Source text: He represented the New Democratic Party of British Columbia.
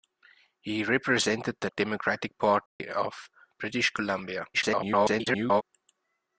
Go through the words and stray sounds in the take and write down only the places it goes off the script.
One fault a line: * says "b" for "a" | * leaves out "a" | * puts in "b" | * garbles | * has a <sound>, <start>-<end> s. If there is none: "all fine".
* leaves out "New"
* has a dropout, 2.7-2.8 s
* garbles